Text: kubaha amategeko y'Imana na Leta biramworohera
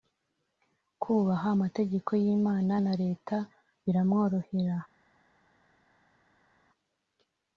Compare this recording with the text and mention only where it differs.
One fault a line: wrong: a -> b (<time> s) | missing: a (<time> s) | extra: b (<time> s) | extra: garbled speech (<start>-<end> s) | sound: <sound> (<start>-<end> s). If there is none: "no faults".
no faults